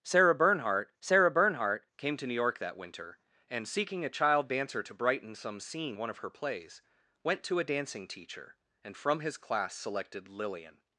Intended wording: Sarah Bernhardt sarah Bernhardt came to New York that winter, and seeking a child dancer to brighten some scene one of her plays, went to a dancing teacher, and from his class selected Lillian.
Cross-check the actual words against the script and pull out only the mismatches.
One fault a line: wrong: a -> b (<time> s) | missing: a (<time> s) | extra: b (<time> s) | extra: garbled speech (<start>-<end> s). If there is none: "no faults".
no faults